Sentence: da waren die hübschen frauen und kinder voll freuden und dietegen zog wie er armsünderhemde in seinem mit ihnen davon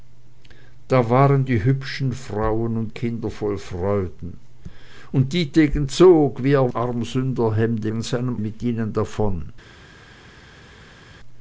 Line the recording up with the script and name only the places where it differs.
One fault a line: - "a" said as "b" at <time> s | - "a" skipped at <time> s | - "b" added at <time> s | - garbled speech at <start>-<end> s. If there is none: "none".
none